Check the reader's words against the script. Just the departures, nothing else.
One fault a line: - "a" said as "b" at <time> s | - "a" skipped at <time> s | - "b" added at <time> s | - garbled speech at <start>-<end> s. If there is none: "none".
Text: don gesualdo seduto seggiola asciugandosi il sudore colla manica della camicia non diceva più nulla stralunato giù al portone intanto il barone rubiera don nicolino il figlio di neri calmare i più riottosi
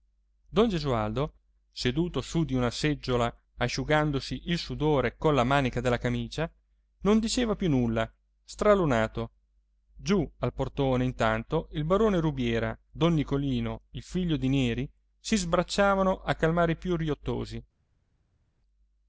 - "su di una" added at 2.2 s
- "si sbracciavano a" added at 15.2 s